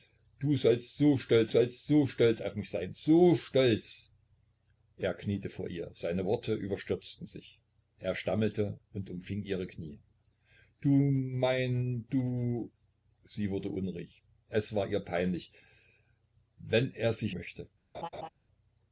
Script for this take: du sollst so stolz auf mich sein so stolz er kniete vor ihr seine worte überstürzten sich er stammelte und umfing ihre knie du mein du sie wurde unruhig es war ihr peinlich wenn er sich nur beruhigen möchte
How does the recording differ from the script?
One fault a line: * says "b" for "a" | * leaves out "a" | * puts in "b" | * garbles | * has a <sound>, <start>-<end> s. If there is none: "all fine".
* puts in "sollst so stolz"
* leaves out "nur beruhigen"
* has a laugh, 17.9-18.3 s